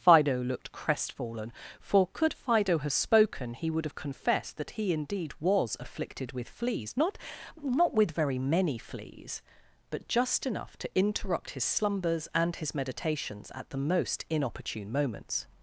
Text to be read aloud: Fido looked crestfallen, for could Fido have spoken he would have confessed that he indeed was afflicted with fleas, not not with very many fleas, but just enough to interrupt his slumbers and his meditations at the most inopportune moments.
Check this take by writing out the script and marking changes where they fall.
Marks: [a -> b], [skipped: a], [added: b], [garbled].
Fido looked crestfallen, for could Fido have spoken he would have confessed that he indeed was afflicted with fleas, not not with very many fleas, but just enough to interrupt his slumbers and his meditations at the most inopportune moments.